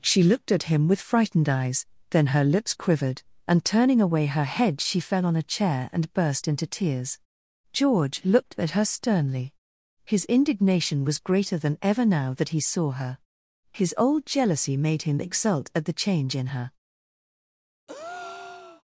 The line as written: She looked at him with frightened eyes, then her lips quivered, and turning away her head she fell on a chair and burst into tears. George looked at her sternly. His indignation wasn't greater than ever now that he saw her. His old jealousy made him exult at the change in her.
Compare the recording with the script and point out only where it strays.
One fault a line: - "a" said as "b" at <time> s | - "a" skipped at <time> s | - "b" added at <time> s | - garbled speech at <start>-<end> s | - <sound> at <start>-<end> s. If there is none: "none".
- "wasn't" said as "was" at 11.1 s
- breath at 17.9-18.8 s